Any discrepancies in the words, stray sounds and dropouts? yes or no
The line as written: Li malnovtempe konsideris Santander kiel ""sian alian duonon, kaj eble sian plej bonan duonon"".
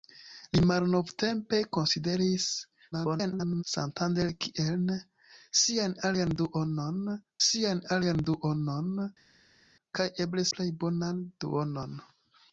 yes